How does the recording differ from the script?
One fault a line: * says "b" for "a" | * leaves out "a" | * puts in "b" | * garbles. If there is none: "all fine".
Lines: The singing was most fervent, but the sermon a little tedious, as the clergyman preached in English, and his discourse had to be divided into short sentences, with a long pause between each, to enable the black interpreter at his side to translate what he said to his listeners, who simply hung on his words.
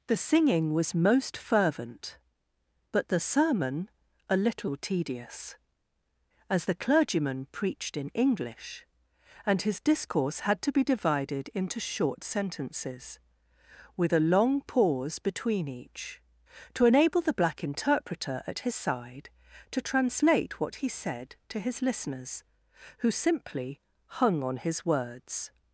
all fine